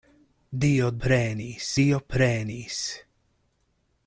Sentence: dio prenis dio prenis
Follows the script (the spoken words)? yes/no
yes